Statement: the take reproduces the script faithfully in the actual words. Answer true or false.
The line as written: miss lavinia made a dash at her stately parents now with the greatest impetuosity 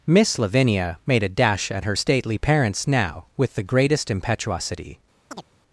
true